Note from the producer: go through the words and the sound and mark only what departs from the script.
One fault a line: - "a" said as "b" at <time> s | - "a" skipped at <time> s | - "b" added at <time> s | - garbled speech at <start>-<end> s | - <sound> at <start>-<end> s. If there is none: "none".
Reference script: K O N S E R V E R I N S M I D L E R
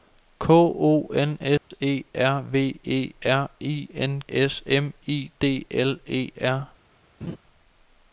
- dropout at 1.6-1.7 s
- laugh at 7.2-7.4 s